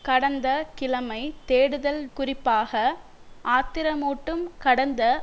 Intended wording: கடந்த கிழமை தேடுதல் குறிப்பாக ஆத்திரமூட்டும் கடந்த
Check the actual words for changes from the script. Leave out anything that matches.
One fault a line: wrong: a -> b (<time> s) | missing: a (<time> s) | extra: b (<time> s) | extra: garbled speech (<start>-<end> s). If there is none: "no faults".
no faults